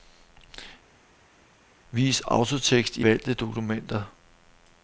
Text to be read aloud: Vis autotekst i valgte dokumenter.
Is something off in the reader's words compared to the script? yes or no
no